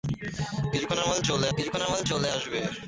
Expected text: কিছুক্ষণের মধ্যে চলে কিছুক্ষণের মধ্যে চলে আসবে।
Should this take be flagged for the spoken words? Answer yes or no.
no